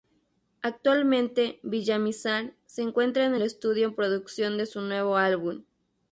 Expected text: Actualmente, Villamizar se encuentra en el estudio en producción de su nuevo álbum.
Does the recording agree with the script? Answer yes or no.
yes